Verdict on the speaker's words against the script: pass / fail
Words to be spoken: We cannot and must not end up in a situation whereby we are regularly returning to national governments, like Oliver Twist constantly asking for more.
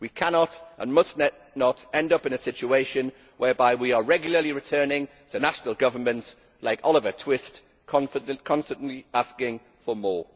pass